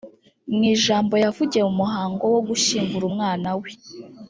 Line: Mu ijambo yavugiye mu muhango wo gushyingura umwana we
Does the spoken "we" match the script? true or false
true